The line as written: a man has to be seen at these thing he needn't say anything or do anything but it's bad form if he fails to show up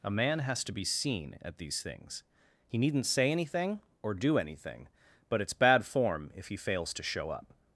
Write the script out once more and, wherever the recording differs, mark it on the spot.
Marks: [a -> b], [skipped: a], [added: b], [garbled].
a man has to be seen at these [thing -> things] he needn't say anything or do anything but it's bad form if he fails to show up